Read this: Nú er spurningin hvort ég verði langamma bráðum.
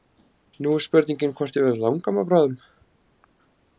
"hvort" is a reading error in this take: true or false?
false